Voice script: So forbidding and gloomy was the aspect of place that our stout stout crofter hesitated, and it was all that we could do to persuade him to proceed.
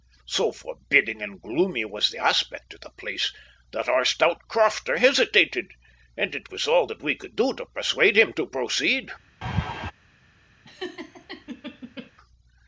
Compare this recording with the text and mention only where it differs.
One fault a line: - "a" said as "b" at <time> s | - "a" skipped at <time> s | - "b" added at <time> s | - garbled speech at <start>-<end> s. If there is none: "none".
- "the" added at 2.8 s
- "stout" skipped at 4.4 s